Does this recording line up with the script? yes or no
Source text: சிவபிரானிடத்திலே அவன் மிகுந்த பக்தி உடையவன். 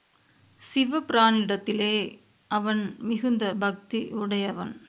yes